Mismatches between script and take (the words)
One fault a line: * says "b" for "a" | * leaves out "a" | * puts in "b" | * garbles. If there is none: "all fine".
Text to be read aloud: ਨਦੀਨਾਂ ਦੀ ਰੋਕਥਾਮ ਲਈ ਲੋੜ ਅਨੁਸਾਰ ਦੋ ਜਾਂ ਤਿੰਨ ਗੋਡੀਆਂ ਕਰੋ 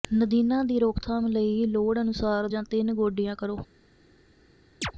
* leaves out "ਦੋ"